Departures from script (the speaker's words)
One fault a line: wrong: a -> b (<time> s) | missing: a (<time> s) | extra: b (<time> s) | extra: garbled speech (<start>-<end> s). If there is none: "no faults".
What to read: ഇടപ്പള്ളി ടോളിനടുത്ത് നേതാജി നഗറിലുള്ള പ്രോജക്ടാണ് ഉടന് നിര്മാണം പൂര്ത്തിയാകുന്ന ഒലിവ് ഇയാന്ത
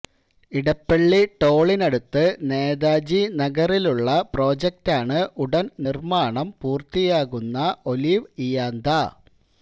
no faults